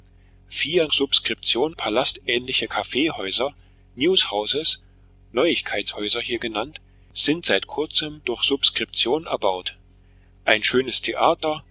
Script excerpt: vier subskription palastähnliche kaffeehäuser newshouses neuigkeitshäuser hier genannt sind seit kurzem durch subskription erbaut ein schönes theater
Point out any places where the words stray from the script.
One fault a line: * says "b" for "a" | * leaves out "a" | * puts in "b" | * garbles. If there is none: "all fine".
all fine